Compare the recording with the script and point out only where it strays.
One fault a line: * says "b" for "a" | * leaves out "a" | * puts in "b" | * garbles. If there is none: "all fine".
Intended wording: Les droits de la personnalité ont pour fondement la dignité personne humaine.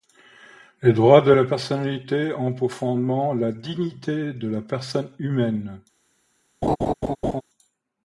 * puts in "de la"